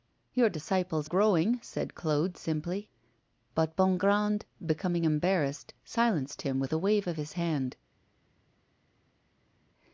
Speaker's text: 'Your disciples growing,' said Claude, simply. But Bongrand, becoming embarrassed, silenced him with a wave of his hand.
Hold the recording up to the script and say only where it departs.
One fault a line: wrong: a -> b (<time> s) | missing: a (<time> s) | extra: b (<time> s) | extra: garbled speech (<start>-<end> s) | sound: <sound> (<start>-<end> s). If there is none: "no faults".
no faults